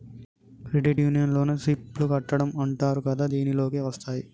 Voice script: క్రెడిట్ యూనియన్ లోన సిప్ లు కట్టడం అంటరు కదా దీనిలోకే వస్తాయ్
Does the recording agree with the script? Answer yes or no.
yes